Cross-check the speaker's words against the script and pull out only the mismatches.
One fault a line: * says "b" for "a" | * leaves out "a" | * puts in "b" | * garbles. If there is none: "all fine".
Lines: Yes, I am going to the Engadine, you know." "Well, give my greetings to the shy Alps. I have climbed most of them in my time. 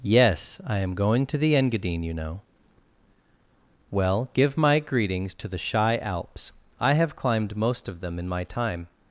all fine